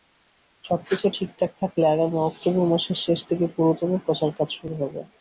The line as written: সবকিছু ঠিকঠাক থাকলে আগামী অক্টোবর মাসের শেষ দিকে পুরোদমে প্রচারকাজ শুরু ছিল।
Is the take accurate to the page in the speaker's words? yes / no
no